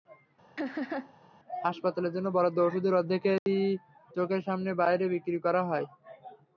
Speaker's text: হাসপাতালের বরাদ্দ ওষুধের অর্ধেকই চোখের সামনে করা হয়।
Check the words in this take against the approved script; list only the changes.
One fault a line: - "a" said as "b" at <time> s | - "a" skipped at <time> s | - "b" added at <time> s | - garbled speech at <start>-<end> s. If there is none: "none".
- "জন্য" added at 2.1 s
- "বাইরে বিক্রি" added at 4.8 s